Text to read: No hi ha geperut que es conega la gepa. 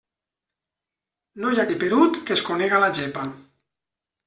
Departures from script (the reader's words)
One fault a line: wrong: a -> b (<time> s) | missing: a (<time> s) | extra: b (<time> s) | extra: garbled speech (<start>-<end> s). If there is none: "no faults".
no faults